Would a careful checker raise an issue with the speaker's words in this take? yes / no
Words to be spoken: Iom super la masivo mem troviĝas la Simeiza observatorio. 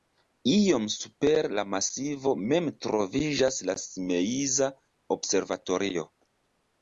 no